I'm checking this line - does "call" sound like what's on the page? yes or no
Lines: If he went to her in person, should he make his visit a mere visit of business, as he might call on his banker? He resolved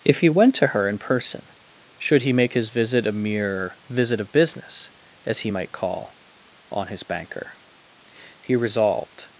yes